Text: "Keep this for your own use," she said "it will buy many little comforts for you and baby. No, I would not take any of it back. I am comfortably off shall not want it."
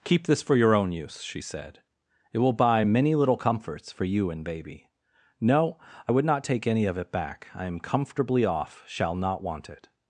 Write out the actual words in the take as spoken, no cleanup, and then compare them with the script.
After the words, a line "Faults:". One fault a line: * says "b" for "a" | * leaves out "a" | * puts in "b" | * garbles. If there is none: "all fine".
"Keep this for your own use," she said "it will buy many little comforts for you and baby. No, I would not take any of it back. I am comfortably off shall not want it."
Faults:
all fine